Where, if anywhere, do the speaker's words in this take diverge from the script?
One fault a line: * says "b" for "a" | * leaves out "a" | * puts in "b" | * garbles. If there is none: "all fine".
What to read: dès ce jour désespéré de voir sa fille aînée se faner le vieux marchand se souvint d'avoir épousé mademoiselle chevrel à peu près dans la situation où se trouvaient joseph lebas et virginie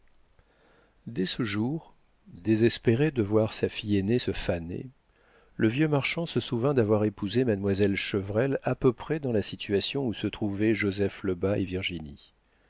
all fine